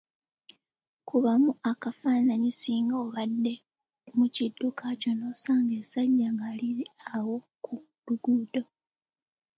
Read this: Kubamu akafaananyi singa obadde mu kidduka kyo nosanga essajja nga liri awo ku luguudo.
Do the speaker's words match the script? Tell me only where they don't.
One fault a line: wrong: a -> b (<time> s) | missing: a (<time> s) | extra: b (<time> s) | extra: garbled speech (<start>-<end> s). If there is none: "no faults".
no faults